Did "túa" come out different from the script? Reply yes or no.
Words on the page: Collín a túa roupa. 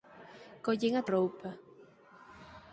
yes